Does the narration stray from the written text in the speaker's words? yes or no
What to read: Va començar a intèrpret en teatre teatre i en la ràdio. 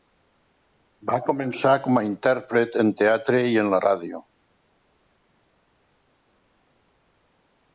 yes